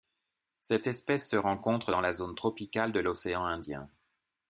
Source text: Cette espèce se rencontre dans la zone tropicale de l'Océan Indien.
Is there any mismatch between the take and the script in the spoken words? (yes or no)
no